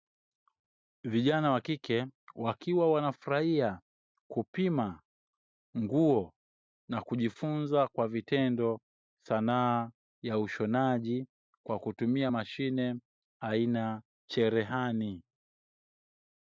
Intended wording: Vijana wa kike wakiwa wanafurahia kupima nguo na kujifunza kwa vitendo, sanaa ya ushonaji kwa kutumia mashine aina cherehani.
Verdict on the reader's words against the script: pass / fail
pass